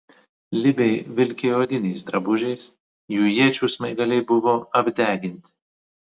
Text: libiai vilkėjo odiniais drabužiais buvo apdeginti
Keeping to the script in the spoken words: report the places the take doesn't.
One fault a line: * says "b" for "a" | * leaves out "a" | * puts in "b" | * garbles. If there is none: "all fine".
* puts in "jų iečių smaigaliai"